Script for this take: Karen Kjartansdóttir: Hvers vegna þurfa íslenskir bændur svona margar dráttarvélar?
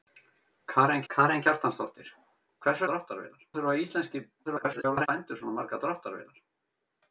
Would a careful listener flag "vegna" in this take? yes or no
yes